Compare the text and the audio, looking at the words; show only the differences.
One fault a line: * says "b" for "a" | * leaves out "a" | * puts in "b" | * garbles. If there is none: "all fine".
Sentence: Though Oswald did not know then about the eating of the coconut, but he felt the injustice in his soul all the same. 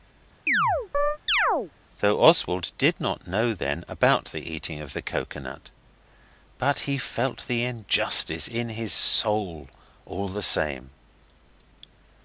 all fine